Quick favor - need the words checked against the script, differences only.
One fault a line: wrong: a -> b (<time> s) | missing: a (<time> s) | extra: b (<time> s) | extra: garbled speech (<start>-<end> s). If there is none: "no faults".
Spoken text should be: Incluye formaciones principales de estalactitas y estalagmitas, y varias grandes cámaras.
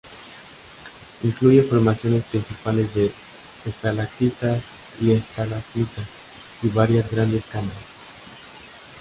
no faults